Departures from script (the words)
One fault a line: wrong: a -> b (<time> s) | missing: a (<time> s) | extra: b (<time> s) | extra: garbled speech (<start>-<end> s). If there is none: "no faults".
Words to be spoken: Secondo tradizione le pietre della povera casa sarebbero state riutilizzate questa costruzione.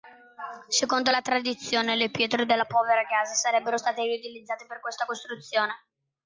extra: la (1.1 s)
extra: per (4.7 s)